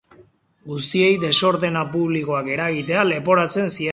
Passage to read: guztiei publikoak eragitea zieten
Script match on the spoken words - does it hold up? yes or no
no